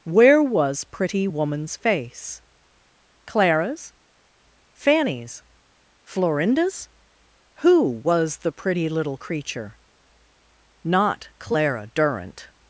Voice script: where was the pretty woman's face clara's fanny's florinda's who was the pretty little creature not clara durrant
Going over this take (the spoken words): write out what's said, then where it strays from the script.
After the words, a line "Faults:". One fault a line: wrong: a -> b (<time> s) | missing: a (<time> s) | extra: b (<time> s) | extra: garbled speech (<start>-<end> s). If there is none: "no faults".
where was pretty woman's face clara's fanny's florinda's who was the pretty little creature not clara durrant
Faults:
missing: the (0.8 s)